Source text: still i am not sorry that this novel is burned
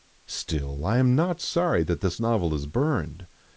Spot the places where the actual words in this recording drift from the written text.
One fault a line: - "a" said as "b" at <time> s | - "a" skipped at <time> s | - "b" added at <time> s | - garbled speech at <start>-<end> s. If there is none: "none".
none